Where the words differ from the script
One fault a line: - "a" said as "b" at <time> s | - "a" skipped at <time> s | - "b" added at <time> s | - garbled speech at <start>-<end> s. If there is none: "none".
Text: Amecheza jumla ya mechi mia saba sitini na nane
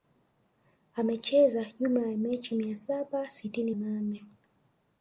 - "na" skipped at 3.8 s